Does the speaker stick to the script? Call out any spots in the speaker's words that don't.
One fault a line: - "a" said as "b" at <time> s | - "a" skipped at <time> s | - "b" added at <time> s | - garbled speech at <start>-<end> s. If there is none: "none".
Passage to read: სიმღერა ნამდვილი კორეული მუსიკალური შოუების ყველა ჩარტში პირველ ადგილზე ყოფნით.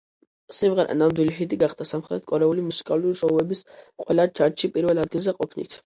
- "ჰიტი გახდა სამხრეთ" added at 1.4 s